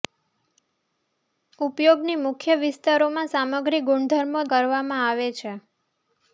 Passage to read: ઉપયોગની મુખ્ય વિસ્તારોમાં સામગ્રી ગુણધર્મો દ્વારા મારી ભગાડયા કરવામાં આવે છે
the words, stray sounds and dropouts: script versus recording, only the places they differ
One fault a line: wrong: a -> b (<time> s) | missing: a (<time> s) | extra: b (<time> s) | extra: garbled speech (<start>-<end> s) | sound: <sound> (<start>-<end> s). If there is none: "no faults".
missing: દ્વારા મારી ભગાડયા (4.5 s)